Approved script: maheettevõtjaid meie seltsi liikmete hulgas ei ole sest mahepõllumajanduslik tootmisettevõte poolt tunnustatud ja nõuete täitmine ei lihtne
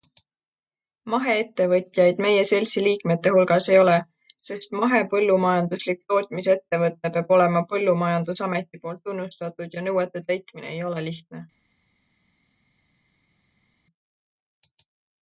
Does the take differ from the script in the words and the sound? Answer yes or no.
yes